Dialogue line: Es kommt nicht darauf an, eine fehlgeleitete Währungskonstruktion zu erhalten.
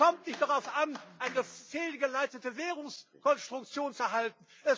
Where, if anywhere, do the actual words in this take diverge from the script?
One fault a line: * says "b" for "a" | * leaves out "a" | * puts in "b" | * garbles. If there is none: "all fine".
all fine